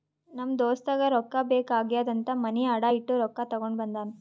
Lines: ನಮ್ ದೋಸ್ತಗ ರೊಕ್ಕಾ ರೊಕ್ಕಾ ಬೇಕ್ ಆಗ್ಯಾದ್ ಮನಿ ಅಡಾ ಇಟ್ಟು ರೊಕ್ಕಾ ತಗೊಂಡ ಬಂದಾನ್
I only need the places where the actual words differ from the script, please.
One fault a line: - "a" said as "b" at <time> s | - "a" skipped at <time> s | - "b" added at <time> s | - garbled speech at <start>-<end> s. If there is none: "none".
- "ರೊಕ್ಕಾ" skipped at 1.4 s
- "ಅಂತ್" added at 2.1 s